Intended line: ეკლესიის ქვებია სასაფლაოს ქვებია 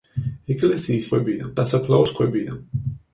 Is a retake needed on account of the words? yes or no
no